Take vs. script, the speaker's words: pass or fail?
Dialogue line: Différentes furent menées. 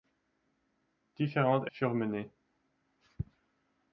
pass